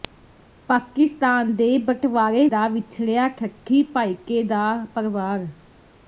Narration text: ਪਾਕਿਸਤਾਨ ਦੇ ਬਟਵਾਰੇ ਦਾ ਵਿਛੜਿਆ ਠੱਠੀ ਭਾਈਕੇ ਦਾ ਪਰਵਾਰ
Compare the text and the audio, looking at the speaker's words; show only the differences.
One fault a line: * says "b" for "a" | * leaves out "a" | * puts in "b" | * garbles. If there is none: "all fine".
all fine